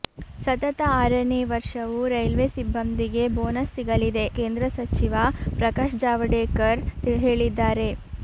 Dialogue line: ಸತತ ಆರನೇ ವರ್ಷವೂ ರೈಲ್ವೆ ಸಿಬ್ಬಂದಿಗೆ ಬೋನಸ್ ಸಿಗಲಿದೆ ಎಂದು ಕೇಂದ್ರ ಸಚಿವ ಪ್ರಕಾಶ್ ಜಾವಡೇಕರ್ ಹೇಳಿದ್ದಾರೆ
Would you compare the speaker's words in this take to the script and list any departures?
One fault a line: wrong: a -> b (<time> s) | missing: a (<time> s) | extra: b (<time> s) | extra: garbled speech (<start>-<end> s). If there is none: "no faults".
missing: ಎಂದು (4.3 s)